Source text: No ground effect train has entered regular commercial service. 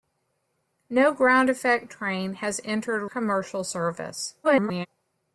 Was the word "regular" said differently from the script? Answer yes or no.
yes